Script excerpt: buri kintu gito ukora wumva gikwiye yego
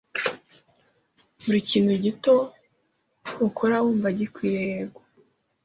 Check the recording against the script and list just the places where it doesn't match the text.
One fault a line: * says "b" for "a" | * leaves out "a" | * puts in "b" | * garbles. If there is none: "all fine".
all fine